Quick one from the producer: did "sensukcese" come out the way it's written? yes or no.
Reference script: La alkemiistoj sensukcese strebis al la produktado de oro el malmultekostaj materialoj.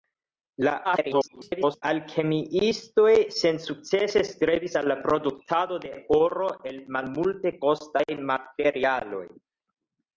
yes